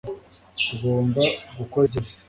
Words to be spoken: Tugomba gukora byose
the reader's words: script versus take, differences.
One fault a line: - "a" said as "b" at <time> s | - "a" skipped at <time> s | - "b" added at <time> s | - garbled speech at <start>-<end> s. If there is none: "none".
none